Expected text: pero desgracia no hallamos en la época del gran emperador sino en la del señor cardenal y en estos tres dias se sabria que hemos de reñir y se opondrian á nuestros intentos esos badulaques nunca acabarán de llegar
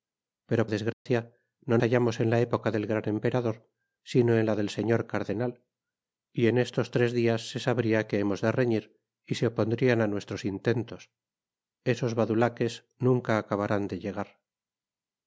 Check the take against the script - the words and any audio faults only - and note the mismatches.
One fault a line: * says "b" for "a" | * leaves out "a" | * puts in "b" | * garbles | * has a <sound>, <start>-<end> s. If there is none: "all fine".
* has a dropout, 0.9-1.1 s